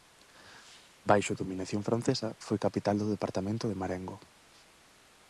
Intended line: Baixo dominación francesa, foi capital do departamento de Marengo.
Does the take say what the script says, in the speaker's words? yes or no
yes